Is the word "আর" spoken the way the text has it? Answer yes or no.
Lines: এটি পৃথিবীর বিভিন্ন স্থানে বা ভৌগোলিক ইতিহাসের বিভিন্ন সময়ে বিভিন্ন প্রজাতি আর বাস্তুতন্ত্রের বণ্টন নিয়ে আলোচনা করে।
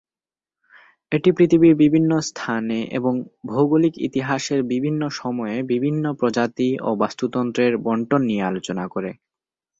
no